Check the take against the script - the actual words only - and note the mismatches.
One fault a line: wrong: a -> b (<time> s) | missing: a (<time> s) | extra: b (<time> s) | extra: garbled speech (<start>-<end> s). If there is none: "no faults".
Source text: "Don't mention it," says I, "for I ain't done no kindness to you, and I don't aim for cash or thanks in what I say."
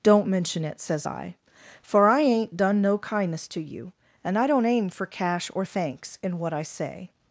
no faults